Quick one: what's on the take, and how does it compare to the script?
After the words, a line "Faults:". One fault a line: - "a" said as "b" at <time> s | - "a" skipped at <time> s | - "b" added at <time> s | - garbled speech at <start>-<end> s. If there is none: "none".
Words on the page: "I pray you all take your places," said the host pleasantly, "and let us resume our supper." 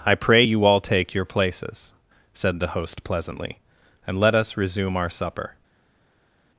"I pray you all take your places," said the host pleasantly, "and let us resume our supper."
Faults:
none